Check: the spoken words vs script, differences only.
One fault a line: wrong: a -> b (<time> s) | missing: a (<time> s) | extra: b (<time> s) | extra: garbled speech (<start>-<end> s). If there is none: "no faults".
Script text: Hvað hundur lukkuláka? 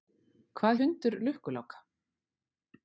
no faults